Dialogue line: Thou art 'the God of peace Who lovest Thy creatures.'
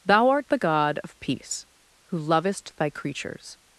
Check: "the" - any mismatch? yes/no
no